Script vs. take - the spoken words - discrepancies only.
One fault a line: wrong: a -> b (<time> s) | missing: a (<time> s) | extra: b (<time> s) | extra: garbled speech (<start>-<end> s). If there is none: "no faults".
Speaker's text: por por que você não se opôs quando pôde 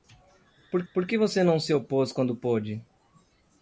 no faults